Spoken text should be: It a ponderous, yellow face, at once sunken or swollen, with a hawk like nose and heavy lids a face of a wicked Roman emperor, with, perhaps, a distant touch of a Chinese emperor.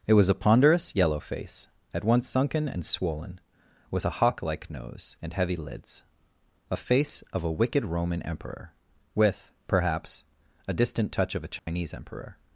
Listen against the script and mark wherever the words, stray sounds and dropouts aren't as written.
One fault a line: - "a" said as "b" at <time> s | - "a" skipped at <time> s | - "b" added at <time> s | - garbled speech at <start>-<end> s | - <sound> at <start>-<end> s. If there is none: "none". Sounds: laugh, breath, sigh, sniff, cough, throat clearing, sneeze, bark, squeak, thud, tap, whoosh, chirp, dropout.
- "was" added at 0.1 s
- "or" said as "and" at 2.7 s
- dropout at 11.6-11.7 s